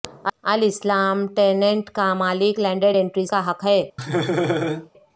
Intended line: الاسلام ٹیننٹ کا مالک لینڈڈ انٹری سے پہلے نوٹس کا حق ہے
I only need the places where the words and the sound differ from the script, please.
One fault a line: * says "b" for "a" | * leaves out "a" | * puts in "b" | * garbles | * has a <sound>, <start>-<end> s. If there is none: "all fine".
* leaves out "سے پہلے نوٹس"
* has a laugh, 4.0-4.9 s